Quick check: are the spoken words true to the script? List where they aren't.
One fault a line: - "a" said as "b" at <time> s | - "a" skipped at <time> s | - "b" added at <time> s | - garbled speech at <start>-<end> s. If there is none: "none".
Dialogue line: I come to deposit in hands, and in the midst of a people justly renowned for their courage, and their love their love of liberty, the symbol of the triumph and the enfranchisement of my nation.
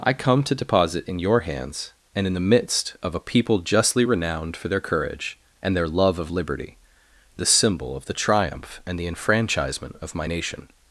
- "your" added at 1.2 s
- "their love" skipped at 6.2 s